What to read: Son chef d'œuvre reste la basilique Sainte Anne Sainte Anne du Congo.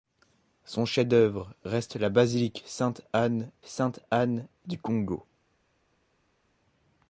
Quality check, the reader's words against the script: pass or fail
pass